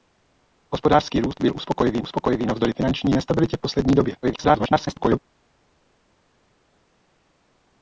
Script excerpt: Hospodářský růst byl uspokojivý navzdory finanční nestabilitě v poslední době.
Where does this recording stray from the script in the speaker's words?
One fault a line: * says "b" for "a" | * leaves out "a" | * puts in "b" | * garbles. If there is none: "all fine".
* puts in "uspokojivý"
* garbles